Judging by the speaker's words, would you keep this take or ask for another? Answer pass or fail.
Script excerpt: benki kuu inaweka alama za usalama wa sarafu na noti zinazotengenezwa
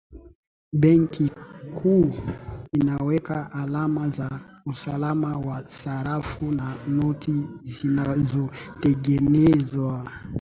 pass